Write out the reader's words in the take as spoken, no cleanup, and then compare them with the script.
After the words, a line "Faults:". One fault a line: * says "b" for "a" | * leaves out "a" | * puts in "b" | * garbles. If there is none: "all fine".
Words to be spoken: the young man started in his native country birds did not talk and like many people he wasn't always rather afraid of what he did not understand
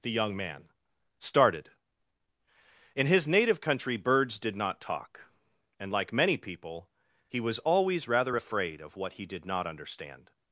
the young man started in his native country birds did not talk and like many people he was always rather afraid of what he did not understand
Faults:
* says "was" for "wasn't"